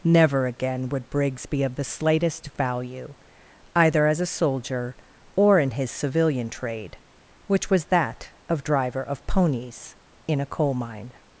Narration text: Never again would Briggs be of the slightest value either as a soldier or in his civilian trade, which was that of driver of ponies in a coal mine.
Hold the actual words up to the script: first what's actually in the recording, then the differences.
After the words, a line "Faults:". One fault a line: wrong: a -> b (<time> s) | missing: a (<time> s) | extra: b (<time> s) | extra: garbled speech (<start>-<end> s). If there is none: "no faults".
Never again would Briggs be of the slightest value either as a soldier or in his civilian trade, which was that of driver of ponies in a coal mine.
Faults:
no faults